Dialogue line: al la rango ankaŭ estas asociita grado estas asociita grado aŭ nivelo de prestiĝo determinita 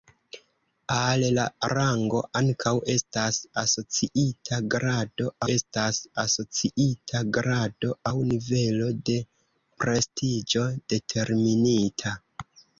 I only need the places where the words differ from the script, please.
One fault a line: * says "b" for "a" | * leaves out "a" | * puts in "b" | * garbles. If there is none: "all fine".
all fine